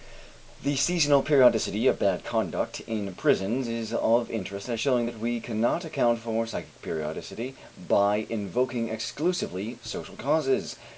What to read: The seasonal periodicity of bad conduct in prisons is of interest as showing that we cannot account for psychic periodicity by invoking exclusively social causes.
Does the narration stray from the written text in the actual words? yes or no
no